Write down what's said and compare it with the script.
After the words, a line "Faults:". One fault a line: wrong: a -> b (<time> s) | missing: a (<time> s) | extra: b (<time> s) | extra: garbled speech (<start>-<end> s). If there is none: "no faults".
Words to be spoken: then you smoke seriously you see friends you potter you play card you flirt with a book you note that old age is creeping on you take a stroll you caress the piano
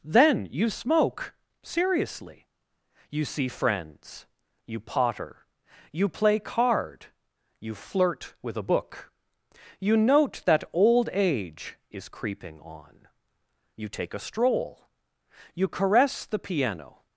then you smoke seriously you see friends you potter you play card you flirt with a book you note that old age is creeping on you take a stroll you caress the piano
Faults:
no faults